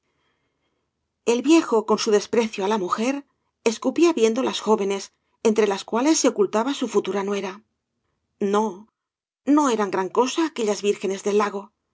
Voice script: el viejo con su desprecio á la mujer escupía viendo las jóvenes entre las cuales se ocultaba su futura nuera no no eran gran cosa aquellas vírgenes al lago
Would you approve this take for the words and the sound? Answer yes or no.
no